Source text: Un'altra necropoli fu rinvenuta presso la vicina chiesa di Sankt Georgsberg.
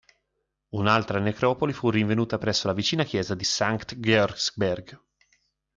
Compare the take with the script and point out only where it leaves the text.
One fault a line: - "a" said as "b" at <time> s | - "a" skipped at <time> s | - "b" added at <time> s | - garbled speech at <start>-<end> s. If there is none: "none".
none